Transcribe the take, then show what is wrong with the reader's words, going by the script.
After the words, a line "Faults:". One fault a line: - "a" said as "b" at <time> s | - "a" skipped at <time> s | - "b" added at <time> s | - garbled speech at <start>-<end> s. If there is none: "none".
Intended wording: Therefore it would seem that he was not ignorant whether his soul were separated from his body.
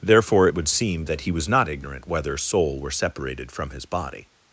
Therefore it would seem that he was not ignorant whether soul were separated from his body.
Faults:
- "his" skipped at 2.4 s